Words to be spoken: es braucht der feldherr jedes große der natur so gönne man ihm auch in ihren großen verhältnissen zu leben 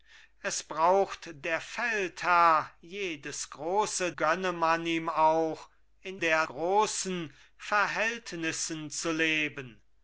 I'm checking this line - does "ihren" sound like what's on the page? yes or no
no